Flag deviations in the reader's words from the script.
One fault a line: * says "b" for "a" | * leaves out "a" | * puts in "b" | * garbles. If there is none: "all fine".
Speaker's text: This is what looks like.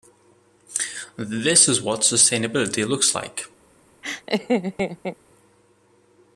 * puts in "sustainability"